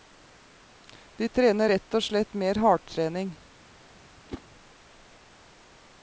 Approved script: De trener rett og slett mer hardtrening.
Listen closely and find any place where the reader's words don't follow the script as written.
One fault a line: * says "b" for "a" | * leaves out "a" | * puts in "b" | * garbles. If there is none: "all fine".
all fine